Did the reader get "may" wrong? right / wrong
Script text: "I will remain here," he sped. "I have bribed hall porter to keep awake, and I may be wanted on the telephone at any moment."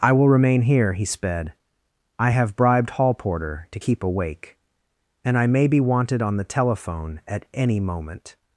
right